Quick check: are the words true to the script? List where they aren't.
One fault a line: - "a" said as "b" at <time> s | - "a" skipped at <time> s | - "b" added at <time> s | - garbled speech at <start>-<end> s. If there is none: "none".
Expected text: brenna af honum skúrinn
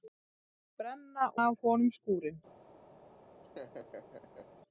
none